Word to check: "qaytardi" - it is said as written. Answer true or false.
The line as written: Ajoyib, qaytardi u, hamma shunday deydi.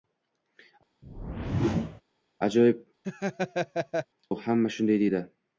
false